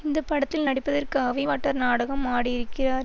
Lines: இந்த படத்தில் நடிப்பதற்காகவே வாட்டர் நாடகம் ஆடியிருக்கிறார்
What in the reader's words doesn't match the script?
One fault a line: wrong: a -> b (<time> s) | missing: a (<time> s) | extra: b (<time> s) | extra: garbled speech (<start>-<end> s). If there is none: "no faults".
no faults